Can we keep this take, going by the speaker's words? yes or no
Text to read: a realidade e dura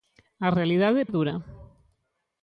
yes